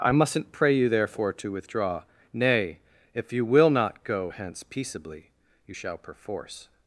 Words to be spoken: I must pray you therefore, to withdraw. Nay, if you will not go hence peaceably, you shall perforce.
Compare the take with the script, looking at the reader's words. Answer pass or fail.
fail